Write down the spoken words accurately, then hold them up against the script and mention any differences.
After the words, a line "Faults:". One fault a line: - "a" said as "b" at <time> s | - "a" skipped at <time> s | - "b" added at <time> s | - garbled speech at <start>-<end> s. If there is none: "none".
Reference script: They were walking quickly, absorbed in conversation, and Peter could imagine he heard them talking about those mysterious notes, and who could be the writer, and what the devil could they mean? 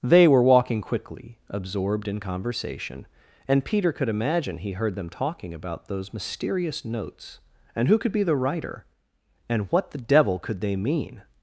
They were walking quickly, absorbed in conversation, and Peter could imagine he heard them talking about those mysterious notes, and who could be the writer, and what the devil could they mean?
Faults:
none